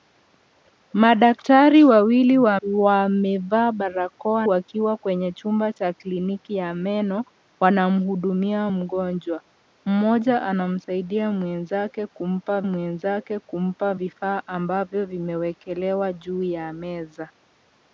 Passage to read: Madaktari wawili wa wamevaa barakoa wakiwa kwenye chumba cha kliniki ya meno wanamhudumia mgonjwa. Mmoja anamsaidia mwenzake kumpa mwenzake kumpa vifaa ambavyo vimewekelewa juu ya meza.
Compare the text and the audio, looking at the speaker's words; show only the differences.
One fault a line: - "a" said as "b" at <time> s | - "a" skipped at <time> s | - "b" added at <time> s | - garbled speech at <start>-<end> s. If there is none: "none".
none